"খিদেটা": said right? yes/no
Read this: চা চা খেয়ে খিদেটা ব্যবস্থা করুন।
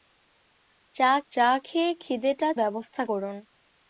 yes